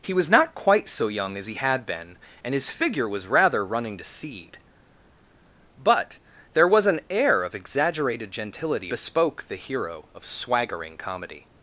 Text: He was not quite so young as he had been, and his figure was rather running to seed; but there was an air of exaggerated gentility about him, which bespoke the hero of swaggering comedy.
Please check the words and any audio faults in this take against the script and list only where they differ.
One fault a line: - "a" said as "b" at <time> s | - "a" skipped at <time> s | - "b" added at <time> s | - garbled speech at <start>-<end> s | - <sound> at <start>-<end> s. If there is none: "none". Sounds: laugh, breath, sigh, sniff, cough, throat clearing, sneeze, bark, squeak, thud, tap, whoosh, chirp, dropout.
- "about him which" skipped at 8.9 s